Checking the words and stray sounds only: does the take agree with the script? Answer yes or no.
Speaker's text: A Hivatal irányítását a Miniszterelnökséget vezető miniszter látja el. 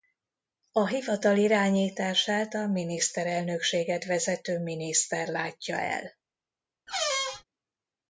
no